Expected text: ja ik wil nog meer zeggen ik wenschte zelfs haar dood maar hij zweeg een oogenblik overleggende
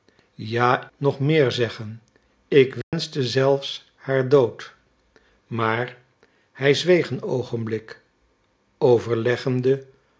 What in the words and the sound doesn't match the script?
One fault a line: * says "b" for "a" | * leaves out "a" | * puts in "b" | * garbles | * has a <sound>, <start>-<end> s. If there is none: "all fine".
* leaves out "ik wil"
* has a dropout, 2.8-2.9 s